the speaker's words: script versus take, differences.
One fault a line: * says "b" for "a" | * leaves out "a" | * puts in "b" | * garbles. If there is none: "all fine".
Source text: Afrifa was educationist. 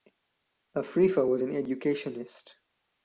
* puts in "an"